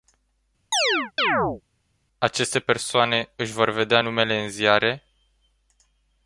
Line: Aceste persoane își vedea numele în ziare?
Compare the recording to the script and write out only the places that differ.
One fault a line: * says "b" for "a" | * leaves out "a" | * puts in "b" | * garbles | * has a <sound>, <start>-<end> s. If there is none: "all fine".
* has a chirp, 0.7-1.6 s
* puts in "vor"